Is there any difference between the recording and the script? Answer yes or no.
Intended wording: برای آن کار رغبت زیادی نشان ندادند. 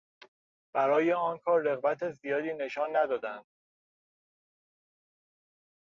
no